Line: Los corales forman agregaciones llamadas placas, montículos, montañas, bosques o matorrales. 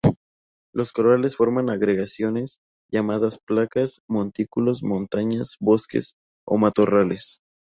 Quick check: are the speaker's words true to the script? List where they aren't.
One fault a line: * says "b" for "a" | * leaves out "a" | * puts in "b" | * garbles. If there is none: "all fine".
all fine